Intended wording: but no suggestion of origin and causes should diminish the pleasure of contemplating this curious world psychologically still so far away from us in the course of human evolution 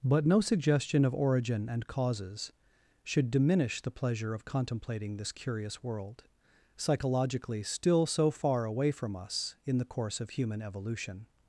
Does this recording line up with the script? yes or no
yes